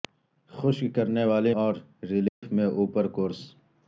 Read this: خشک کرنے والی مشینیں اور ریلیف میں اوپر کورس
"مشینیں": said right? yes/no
no